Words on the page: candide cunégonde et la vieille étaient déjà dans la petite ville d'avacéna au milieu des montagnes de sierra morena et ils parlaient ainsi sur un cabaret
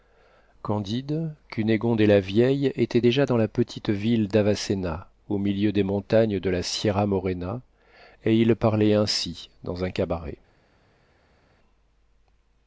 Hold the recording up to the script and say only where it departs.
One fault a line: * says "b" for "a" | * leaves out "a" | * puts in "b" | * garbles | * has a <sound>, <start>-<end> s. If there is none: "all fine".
* puts in "la"
* says "dans" for "sur"